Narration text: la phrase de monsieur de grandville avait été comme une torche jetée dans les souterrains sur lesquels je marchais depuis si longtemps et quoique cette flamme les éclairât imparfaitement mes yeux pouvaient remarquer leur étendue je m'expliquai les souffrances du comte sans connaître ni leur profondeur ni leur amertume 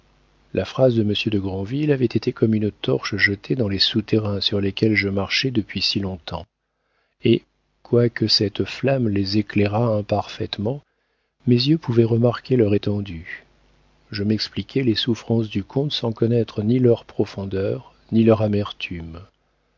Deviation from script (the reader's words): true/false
false